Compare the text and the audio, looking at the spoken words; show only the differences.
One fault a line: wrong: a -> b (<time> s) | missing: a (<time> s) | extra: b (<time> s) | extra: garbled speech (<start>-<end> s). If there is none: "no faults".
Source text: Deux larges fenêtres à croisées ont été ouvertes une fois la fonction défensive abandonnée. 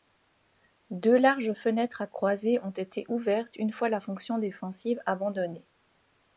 no faults